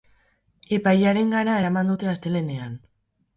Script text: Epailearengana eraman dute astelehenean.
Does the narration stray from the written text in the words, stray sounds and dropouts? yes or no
no